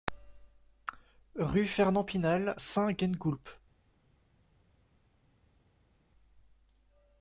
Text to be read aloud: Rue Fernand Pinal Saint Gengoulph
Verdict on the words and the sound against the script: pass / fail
pass